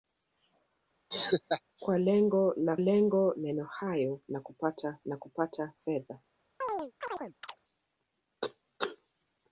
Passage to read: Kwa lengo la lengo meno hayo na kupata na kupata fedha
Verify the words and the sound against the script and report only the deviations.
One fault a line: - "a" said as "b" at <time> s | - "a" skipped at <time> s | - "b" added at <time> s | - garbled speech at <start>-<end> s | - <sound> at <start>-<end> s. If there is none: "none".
- laugh at 1.1-1.6 s
- chirp at 6.6-7.6 s